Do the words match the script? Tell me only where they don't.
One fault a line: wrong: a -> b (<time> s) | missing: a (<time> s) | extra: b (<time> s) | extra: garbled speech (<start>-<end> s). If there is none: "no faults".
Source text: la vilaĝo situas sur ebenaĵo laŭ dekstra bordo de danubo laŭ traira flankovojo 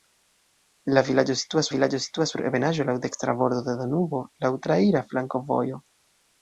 extra: vilaĝo situas (1.7 s)